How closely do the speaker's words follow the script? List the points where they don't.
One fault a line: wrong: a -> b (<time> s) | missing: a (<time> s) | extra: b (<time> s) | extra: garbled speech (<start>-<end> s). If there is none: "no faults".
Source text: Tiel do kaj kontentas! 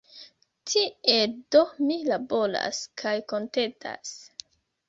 extra: mi laboras (1.9 s)